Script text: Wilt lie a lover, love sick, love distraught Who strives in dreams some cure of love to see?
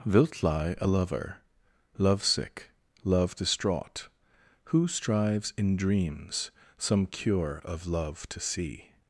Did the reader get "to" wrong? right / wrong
right